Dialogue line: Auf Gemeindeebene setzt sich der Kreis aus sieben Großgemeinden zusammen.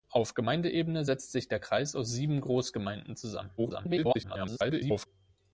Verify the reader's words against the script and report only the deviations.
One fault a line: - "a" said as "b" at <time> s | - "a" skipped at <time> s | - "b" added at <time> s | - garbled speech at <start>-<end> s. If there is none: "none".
- garbled speech at 3.6-5.1 s